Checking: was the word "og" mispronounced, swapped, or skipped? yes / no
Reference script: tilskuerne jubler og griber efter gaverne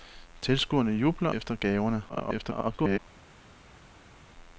yes